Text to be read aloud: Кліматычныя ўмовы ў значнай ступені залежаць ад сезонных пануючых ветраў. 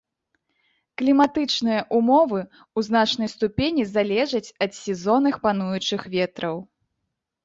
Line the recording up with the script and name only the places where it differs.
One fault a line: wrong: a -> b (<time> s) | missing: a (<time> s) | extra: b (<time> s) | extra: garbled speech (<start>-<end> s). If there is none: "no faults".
no faults